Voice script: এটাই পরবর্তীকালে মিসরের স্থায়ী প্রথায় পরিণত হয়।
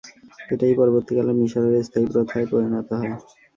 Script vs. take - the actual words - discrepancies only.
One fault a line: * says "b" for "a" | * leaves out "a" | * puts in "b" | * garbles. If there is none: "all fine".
all fine